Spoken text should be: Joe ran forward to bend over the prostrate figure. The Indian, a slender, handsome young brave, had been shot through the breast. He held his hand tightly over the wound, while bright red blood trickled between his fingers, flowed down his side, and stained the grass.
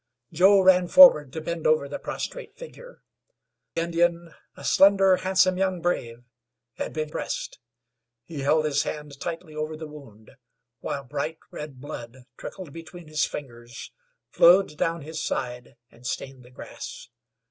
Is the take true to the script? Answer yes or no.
no